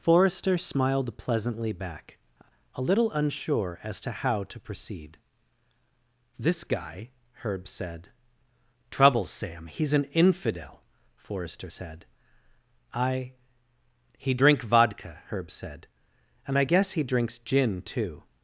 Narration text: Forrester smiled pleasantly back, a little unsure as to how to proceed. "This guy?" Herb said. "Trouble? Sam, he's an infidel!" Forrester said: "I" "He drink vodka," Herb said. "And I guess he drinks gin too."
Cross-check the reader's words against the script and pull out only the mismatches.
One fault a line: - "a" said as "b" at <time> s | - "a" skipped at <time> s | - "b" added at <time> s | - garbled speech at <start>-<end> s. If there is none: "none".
none